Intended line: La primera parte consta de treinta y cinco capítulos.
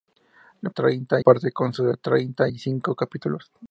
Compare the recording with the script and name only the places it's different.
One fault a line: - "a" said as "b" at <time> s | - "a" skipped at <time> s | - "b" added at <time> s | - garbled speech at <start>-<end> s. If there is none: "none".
- "primera" said as "treinta" at 0.7 s